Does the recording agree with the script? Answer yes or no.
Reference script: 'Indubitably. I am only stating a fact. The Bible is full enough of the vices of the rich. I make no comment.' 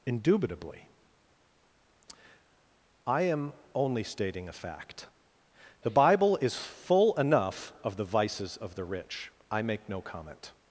yes